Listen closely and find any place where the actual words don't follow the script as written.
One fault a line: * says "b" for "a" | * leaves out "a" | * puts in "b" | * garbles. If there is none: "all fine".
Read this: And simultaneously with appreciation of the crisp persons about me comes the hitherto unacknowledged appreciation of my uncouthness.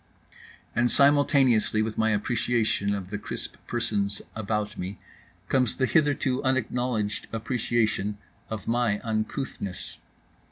* puts in "my"